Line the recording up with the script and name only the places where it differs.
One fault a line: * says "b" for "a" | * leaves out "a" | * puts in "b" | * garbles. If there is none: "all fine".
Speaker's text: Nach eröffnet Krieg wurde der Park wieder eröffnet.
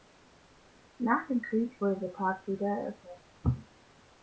* says "dem" for "eröffnet"